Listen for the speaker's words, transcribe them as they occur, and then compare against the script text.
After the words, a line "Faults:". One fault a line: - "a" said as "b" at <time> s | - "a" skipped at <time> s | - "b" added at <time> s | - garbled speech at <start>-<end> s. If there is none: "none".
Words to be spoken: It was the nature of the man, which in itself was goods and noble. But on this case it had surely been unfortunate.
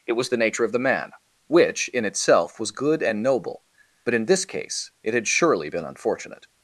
It was the nature of the man, which in itself was good and noble. But in this case it had surely been unfortunate.
Faults:
- "goods" said as "good" at 2.7 s
- "on" said as "in" at 4.1 s